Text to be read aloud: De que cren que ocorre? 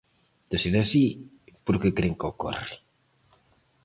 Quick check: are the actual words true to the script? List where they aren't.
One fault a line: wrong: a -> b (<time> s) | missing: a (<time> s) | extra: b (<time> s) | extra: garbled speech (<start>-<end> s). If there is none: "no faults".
extra: ser así por (0.6 s)